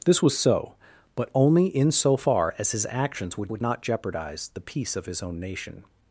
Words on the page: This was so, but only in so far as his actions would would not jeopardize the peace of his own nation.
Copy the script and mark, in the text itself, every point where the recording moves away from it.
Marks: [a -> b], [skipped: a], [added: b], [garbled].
This was so, but only in so far as his actions would would not jeopardize the peace of his own nation.